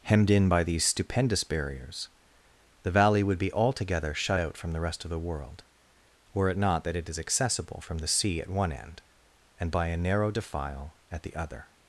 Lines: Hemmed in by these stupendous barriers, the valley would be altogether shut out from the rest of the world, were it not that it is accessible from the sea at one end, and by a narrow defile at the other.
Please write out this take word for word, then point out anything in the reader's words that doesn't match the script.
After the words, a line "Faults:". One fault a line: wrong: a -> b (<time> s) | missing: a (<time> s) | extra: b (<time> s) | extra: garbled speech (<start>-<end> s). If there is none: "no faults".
Hemmed in by these stupendous barriers, the valley would be altogether shut out from the rest of the world, were it not that it is accessible from the sea at one end, and by a narrow defile at the other.
Faults:
no faults